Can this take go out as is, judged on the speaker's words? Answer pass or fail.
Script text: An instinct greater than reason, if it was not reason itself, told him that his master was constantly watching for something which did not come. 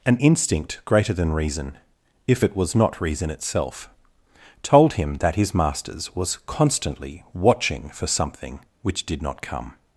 fail